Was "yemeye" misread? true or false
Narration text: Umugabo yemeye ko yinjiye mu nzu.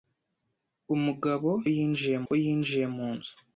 true